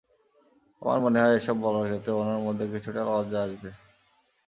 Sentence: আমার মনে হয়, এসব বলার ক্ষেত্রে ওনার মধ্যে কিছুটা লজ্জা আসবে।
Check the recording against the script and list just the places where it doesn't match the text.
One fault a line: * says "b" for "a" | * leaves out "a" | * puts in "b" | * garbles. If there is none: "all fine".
all fine